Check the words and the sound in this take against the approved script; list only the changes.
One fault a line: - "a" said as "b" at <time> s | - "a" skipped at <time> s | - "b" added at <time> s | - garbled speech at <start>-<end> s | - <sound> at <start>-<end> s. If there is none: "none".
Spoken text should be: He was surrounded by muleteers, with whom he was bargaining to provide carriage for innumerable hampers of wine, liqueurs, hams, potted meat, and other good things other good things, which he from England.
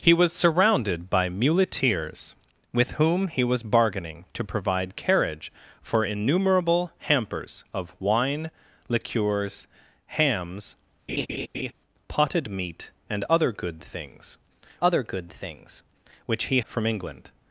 - laugh at 11.1-11.7 s